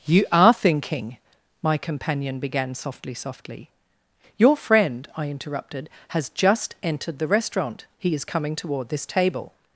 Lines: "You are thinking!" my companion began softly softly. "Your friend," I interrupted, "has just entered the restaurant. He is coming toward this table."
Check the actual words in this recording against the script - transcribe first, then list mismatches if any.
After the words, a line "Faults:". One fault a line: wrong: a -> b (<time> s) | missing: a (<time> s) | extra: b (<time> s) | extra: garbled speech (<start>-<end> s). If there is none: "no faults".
"You are thinking!" my companion began softly softly. "Your friend," I interrupted, "has just entered the restaurant. He is coming toward this table."
Faults:
no faults